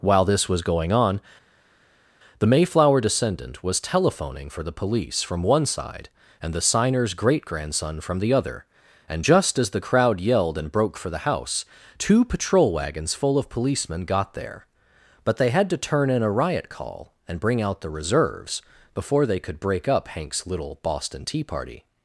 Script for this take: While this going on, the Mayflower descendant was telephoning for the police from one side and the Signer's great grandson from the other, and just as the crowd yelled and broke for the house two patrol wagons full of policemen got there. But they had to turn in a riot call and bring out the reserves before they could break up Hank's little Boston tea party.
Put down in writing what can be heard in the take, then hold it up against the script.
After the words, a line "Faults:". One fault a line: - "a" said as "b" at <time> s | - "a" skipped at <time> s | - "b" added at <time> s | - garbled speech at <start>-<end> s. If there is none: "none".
While this was going on, the Mayflower descendant was telephoning for the police from one side and the Signer's great grandson from the other, and just as the crowd yelled and broke for the house two patrol wagons full of policemen got there. But they had to turn in a riot call and bring out the reserves before they could break up Hank's little Boston tea party.
Faults:
- "was" added at 0.5 s